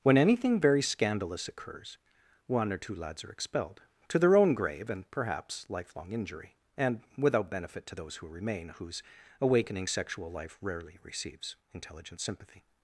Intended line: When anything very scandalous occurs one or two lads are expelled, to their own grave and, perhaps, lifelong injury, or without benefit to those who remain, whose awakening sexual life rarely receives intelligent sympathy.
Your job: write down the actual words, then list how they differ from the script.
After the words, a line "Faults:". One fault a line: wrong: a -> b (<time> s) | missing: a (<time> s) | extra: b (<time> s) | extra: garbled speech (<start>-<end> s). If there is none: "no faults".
When anything very scandalous occurs one or two lads are expelled, to their own grave and, perhaps, lifelong injury, and without benefit to those who remain, whose awakening sexual life rarely receives intelligent sympathy.
Faults:
wrong: or -> and (6.8 s)